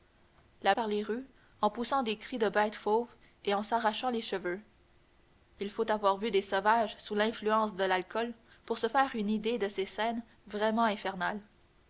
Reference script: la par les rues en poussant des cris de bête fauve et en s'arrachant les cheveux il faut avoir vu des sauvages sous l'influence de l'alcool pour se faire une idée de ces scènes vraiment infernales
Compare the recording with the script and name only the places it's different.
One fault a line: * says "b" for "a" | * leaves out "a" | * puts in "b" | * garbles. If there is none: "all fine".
all fine